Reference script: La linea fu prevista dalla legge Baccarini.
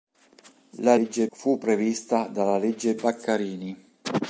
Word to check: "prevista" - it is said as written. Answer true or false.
true